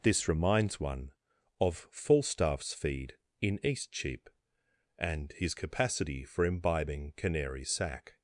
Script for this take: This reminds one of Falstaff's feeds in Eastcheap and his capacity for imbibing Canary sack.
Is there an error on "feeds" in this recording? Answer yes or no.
yes